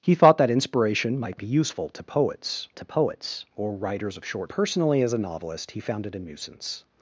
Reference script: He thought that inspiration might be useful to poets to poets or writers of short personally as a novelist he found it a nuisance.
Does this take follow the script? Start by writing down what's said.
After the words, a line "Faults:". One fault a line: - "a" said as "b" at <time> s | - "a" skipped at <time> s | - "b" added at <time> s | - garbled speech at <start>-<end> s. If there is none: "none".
He thought that inspiration might be useful to poets to poets or writers of short personally as a novelist he found it a nuisance.
Faults:
none